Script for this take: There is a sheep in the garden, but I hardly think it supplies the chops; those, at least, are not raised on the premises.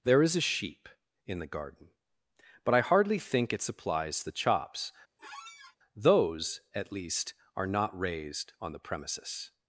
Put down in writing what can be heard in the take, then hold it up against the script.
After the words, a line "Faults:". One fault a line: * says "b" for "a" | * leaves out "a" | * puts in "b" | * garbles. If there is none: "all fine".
There is a sheep in the garden, but I hardly think it supplies the chops; those, at least, are not raised on the premises.
Faults:
all fine